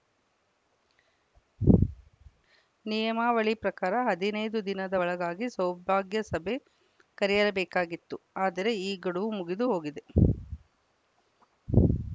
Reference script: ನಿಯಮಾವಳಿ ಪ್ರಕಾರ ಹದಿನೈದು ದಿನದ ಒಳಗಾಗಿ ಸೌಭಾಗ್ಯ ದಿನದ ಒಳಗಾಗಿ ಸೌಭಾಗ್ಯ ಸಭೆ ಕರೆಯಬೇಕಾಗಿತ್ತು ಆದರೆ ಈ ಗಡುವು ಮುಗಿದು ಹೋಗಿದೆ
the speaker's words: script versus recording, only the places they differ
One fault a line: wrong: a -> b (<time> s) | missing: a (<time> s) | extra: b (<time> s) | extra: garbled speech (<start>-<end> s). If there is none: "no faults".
missing: ದಿನದ ಒಳಗಾಗಿ ಸೌಭಾಗ್ಯ (6.2 s)